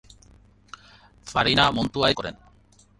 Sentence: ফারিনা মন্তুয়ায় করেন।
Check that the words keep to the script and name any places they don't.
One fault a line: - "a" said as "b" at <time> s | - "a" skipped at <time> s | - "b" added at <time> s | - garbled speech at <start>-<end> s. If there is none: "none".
none